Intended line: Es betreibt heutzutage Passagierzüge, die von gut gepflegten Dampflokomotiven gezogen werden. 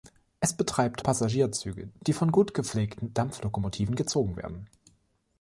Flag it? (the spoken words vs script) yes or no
yes